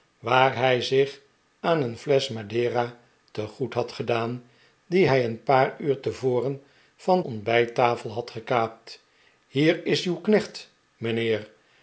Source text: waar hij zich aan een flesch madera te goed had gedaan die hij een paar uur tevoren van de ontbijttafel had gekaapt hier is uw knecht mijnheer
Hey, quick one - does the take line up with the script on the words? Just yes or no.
no